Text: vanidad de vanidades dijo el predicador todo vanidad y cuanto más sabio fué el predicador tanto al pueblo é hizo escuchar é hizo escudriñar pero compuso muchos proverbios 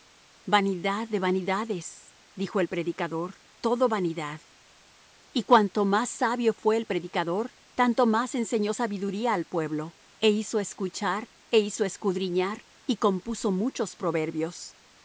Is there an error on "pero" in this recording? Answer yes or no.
yes